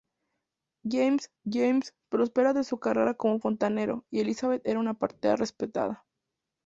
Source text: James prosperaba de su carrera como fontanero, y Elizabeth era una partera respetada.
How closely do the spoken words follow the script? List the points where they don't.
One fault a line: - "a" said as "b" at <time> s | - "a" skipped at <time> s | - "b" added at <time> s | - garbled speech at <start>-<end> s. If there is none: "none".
- "james" added at 1.4 s